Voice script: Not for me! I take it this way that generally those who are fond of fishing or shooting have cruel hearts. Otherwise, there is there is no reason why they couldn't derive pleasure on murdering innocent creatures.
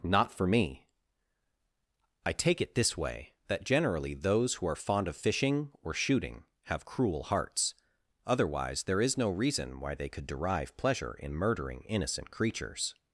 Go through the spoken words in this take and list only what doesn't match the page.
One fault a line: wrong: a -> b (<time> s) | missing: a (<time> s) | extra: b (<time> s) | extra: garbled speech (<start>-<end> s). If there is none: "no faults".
missing: there is (9.2 s)
wrong: couldn't -> could (10.1 s)
wrong: on -> in (11.1 s)